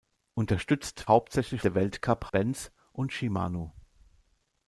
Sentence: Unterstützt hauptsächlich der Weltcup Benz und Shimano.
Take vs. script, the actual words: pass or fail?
pass